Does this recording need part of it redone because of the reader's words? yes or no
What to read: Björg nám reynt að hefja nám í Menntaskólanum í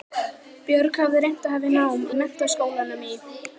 yes